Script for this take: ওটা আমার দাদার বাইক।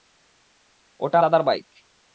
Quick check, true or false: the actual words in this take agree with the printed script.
false